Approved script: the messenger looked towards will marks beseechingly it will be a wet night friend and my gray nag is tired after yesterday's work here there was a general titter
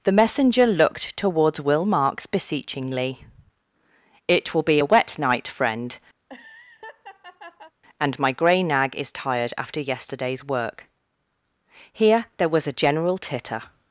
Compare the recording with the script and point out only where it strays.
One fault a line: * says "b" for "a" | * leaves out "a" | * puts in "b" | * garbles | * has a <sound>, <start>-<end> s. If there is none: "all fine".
* has a laugh, 6.2-7.7 s